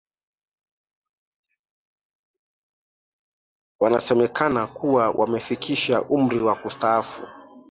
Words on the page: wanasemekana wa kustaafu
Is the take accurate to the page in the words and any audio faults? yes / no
no